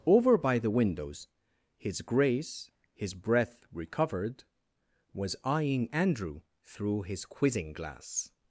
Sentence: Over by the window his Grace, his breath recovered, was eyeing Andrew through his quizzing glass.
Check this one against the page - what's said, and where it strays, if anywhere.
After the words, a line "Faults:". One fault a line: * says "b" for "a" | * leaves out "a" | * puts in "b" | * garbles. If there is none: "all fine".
Over by the windows his Grace, his breath recovered, was eyeing Andrew through his quizzing glass.
Faults:
* says "windows" for "window"